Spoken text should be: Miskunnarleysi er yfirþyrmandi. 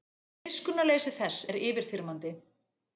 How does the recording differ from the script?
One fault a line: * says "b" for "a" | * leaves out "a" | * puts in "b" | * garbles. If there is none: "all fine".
* puts in "þess"